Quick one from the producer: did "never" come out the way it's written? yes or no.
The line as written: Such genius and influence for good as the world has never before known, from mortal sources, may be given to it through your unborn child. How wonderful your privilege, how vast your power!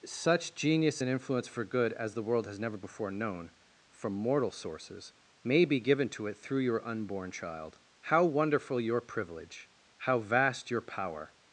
yes